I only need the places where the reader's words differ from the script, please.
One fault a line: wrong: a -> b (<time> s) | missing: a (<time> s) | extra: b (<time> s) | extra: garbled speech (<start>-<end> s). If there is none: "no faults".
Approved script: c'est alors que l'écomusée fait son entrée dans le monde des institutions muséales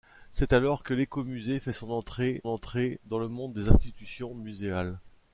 extra: entrée (2.5 s)